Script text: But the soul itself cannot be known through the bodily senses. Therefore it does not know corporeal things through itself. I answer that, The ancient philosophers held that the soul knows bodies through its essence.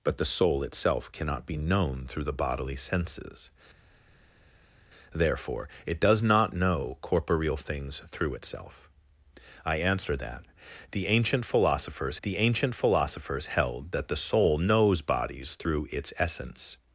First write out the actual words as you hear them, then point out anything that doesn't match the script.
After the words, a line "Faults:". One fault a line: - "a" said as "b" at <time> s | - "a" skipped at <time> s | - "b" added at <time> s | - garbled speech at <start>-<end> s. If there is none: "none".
But the soul itself cannot be known through the bodily senses. Therefore it does not know corporeal things through itself. I answer that, The ancient philosophers The ancient philosophers held that the soul knows bodies through its essence.
Faults:
- "The ancient philosophers" added at 12.2 s